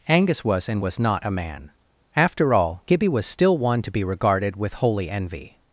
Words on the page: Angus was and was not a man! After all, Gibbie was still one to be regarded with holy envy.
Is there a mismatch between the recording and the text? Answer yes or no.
no